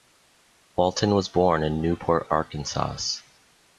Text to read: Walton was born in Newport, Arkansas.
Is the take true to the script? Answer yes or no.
yes